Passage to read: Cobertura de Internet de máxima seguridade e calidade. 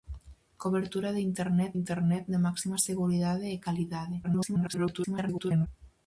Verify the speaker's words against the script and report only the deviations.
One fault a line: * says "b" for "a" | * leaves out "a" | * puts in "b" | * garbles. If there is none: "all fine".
* puts in "Internet"
* garbles